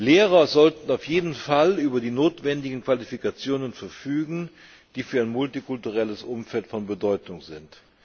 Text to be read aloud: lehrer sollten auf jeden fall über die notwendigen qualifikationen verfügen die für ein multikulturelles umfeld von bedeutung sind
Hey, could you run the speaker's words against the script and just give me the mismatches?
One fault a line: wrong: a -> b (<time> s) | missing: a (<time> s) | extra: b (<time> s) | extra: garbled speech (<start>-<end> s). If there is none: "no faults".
no faults